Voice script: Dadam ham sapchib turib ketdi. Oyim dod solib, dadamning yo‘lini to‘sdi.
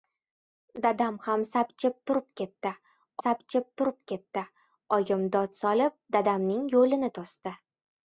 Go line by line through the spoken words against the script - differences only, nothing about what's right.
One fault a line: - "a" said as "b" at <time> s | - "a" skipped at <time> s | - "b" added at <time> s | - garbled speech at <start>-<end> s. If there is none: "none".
- "sapchib turib ketdi" added at 3.2 s